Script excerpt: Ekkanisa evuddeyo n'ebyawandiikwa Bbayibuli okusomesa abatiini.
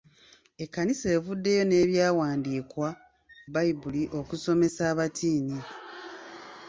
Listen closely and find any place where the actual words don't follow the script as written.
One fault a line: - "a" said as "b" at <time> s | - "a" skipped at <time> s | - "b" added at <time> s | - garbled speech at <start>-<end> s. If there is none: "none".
none